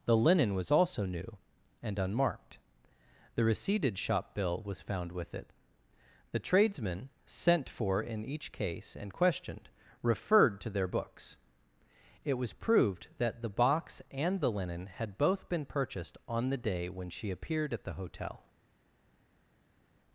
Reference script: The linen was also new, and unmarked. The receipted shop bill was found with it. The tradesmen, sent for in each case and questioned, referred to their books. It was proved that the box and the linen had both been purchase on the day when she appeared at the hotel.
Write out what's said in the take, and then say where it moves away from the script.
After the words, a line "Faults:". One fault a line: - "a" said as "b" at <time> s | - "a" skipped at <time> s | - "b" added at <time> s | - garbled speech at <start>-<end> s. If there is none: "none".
The linen was also new, and unmarked. The receipted shop bill was found with it. The tradesmen, sent for in each case and questioned, referred to their books. It was proved that the box and the linen had both been purchased on the day when she appeared at the hotel.
Faults:
- "purchase" said as "purchased" at 15.6 s